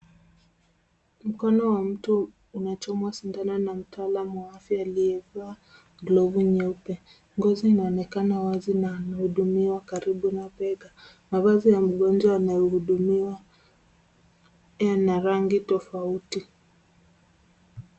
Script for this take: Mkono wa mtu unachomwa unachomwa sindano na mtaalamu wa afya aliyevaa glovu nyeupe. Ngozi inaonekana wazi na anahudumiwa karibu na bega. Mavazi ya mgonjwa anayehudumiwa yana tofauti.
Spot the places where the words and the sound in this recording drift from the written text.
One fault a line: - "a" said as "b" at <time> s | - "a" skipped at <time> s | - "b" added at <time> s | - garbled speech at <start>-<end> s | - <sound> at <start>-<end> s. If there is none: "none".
- "unachomwa" skipped at 3.1 s
- "rangi" added at 15.2 s